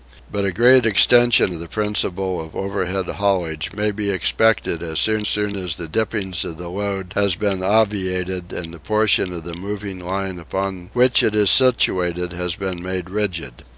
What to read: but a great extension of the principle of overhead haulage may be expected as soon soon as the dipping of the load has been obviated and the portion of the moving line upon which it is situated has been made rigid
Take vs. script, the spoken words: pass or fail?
pass